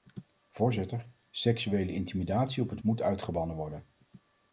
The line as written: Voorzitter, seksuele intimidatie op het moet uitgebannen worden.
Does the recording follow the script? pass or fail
pass